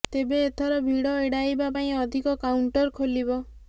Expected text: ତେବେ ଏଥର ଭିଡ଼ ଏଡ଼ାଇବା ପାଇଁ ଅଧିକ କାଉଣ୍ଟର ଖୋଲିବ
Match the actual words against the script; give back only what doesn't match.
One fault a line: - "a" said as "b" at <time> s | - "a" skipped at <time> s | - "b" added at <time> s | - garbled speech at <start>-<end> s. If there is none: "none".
none